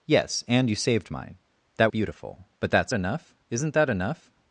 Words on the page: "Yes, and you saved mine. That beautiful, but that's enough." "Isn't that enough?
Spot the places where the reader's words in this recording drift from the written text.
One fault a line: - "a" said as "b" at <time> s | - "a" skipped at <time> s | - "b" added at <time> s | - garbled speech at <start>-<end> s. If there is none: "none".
none